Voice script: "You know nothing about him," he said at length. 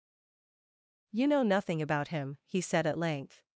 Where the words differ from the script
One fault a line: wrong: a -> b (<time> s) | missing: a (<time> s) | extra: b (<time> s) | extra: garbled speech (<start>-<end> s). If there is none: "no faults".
no faults